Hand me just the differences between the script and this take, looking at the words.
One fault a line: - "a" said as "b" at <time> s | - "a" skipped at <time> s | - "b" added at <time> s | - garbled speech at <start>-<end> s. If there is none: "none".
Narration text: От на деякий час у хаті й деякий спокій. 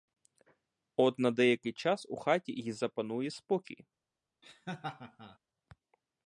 - "деякий" said as "запанує" at 2.7 s